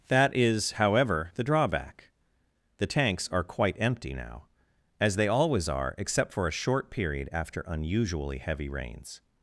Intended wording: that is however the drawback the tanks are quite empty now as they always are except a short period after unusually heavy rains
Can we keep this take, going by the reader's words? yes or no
no